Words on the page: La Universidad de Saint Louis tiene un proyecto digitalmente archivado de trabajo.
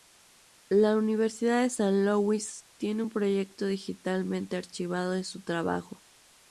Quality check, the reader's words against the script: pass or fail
fail